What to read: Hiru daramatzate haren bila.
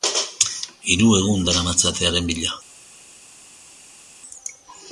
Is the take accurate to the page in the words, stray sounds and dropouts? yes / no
no